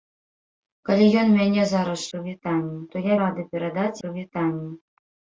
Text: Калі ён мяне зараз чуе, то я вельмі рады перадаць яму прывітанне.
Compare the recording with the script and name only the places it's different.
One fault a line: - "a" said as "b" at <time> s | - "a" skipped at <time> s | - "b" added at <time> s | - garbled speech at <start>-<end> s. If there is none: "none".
- "чуе" said as "прывітанне" at 2.1 s
- "вельмі" skipped at 3.2 s
- "яму" skipped at 4.0 s